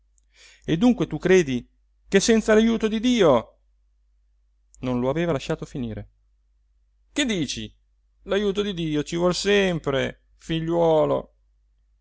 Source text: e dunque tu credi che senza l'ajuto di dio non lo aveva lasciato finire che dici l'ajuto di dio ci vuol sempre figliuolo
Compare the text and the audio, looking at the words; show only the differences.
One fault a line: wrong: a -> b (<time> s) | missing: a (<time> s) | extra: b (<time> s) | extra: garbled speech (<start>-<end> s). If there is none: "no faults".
no faults